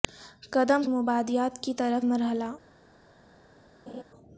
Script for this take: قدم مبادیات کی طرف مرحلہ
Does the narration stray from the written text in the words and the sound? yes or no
yes